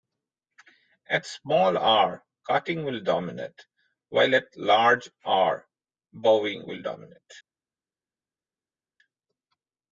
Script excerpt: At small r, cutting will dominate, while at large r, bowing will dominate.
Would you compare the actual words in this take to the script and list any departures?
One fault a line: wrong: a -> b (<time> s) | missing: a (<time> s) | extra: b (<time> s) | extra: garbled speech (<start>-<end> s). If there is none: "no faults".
no faults